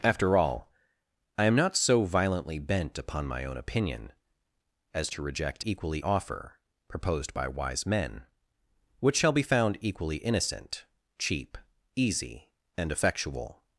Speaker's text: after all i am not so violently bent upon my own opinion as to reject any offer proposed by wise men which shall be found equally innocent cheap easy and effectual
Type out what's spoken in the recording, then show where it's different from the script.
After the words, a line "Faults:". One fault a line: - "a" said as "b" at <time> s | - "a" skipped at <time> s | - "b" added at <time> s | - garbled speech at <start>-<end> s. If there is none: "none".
after all i am not so violently bent upon my own opinion as to reject equally offer proposed by wise men which shall be found equally innocent cheap easy and effectual
Faults:
- "any" said as "equally" at 5.6 s